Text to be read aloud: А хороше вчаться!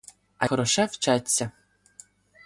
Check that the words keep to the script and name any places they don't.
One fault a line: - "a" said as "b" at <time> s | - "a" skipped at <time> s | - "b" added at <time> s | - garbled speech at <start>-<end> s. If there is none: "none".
none